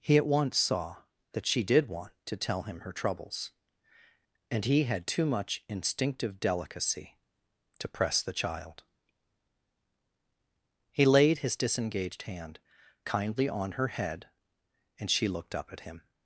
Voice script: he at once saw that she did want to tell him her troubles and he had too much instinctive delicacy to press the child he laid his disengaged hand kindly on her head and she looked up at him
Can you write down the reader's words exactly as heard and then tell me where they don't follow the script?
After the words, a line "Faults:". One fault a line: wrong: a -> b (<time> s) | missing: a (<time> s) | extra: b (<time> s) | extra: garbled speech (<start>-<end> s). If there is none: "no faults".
he at once saw that she did want to tell him her troubles and he had too much instinctive delicacy to press the child he laid his disengaged hand kindly on her head and she looked up at him
Faults:
no faults